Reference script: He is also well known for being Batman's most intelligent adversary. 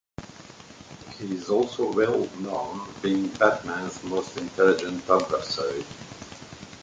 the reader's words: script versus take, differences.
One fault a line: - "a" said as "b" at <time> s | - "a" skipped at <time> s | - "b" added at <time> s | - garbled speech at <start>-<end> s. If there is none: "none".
- "for" skipped at 2.9 s